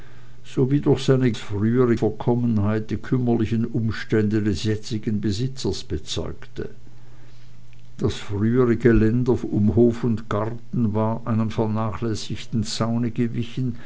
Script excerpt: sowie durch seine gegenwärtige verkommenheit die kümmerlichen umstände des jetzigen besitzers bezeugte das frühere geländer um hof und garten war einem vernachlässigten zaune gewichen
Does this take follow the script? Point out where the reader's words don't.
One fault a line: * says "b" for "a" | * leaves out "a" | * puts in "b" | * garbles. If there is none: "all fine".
* says "frühere" for "gegenwärtige"